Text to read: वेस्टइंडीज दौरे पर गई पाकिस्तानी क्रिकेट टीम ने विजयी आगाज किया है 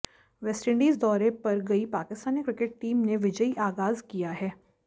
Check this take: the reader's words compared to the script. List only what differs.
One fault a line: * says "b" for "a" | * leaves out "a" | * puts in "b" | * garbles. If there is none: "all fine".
all fine